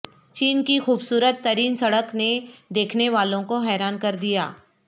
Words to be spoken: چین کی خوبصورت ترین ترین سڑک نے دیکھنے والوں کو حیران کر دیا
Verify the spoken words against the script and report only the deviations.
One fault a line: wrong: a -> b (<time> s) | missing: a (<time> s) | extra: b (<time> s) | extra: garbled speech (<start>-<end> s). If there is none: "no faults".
missing: ترین (1.8 s)